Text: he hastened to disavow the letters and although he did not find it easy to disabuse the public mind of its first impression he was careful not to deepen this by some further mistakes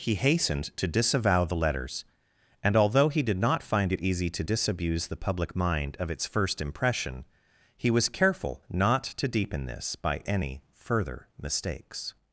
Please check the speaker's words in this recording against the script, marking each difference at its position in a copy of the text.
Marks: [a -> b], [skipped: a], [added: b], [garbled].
he hastened to disavow the letters and although he did not find it easy to disabuse the public mind of its first impression he was careful not to deepen this by [some -> any] further mistakes